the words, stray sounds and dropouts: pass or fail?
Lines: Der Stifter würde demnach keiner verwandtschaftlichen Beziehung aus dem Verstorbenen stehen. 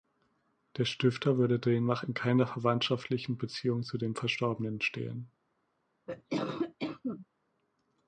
fail